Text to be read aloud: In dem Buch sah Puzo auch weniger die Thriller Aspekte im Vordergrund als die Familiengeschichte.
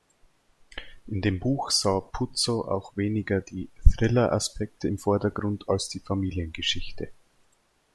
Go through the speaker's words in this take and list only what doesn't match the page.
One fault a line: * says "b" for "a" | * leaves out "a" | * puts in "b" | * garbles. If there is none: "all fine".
all fine